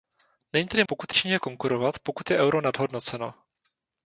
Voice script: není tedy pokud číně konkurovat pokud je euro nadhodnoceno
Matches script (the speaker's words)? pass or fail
pass